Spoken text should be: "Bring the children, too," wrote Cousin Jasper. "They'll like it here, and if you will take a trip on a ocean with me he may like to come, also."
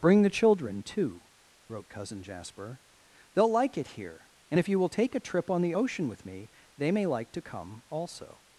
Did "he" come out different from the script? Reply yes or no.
yes